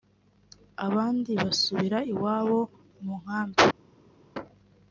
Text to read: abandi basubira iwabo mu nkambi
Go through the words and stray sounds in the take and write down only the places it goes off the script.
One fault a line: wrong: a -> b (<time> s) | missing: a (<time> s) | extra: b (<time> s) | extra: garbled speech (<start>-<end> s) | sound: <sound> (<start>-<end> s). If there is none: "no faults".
no faults